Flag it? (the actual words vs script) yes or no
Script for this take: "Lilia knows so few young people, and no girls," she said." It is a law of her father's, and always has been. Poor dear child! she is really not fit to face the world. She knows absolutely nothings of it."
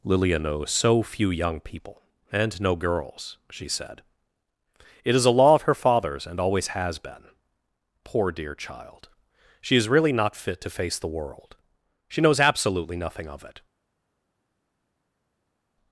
yes